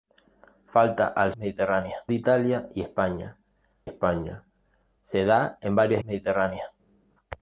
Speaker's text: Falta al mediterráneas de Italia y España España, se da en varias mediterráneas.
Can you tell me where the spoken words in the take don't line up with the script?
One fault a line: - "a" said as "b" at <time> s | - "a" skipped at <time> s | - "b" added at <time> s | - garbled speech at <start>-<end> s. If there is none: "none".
none